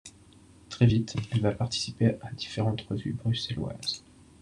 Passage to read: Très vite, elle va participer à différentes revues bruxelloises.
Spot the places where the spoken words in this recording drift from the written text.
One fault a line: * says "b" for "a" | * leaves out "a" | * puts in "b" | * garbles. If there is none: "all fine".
all fine